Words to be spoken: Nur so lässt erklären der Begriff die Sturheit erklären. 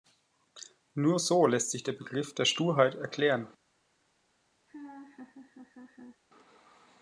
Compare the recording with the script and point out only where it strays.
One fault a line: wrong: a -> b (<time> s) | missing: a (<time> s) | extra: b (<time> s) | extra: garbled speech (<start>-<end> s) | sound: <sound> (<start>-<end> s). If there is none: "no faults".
wrong: erklären -> sich (1.7 s)
wrong: die -> der (2.3 s)
sound: laugh (4.7-6.2 s)